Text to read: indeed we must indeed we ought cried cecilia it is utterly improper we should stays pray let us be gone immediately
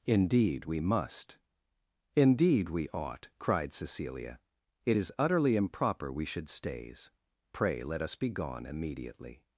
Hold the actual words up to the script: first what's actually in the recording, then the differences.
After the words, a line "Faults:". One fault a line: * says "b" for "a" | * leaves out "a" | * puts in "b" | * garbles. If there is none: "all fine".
indeed we must indeed we ought cried cecilia it is utterly improper we should stays pray let us be gone immediately
Faults:
all fine